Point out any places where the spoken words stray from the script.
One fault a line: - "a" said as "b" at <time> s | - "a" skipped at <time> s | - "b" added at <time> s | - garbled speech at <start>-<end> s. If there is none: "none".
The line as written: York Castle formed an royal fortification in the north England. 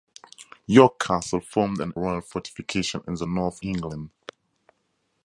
none